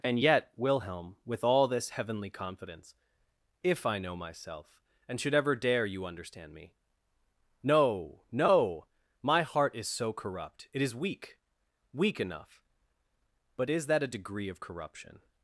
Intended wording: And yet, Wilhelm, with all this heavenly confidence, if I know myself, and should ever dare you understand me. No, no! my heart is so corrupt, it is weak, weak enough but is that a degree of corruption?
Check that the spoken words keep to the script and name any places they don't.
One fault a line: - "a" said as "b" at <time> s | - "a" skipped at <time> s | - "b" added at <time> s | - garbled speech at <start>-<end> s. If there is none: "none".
none